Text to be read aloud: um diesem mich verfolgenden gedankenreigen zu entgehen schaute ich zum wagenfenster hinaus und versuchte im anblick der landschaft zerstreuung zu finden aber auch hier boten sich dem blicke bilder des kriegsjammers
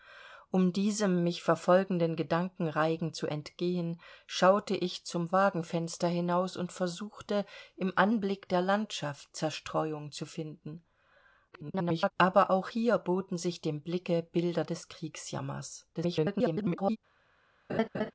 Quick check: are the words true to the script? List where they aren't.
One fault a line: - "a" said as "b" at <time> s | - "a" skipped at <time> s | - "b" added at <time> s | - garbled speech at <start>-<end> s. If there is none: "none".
- garbled speech at 11.5-12.1 s
- garbled speech at 15.9-17.0 s